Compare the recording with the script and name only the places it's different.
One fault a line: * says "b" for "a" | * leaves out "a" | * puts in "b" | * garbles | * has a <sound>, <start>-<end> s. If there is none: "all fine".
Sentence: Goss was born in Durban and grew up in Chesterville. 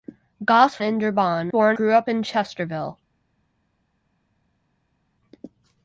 * leaves out "was born"
* says "born" for "and"